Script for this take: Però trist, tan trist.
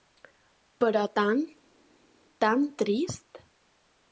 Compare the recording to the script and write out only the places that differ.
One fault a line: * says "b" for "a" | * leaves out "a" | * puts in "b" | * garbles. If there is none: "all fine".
* says "tan" for "trist"